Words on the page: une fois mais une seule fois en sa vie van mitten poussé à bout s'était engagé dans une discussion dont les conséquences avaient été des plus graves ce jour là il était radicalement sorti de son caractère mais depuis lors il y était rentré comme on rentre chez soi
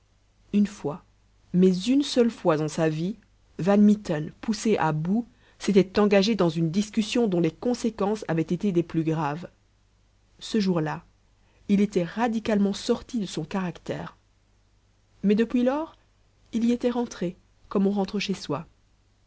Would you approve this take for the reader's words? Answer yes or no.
yes